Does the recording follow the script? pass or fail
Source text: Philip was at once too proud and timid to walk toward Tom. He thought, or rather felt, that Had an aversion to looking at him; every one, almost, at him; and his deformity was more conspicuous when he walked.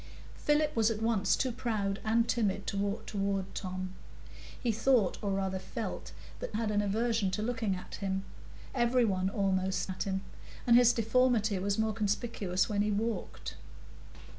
pass